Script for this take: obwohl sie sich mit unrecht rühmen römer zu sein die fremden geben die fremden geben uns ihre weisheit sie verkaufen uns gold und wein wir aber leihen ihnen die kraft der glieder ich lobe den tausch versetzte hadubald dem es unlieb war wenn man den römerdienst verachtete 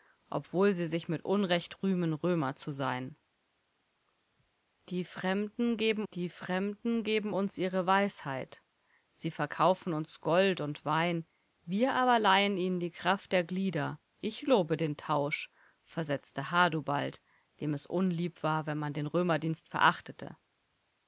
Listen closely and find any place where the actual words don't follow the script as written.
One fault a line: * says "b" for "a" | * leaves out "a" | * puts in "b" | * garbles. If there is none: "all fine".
all fine